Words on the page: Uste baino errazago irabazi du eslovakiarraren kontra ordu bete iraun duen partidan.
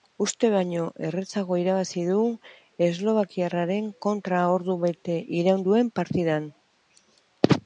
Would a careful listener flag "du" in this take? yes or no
no